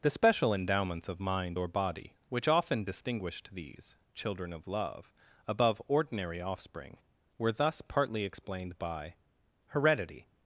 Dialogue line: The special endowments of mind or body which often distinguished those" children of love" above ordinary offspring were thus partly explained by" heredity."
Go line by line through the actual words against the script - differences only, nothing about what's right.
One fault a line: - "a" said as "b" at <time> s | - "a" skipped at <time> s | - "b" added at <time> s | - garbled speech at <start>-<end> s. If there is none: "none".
- "those" said as "these" at 3.5 s